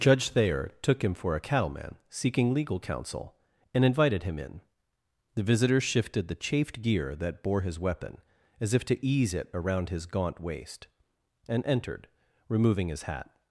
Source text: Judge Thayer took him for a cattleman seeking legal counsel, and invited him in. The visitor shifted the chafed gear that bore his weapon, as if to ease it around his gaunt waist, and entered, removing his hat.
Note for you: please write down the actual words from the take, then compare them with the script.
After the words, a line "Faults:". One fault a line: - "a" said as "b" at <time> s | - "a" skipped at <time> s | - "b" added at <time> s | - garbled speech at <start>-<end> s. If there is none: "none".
Judge Thayer took him for a cattleman seeking legal counsel, and invited him in. The visitor shifted the chafed gear that bore his weapon, as if to ease it around his gaunt waist, and entered, removing his hat.
Faults:
none